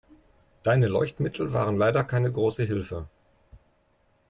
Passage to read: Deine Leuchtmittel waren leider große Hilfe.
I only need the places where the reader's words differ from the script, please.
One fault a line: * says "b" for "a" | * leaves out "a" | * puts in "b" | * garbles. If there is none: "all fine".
* puts in "keine"